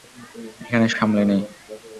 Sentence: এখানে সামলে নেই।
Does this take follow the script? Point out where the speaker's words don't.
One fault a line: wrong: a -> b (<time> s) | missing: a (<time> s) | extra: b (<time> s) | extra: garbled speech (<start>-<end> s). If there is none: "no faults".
no faults